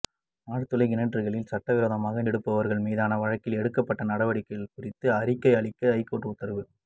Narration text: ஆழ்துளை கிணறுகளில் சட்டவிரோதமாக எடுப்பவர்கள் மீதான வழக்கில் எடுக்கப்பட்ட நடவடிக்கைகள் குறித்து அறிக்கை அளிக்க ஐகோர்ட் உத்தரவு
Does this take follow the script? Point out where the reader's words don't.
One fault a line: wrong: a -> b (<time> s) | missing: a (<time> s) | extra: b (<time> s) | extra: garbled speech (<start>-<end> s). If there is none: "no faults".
no faults